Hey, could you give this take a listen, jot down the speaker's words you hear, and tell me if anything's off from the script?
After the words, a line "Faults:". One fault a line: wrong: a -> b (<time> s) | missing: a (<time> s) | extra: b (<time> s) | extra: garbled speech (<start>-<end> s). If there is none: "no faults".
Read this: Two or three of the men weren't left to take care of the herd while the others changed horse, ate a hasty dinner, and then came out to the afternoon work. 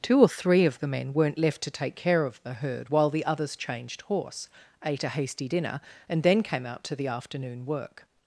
Two or three of the men weren't left to take care of the herd while the others changed horse, ate a hasty dinner, and then came out to the afternoon work.
Faults:
no faults